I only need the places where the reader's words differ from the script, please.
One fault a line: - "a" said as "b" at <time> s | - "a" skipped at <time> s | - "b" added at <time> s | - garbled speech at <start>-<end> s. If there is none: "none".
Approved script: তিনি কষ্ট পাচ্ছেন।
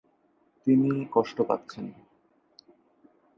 none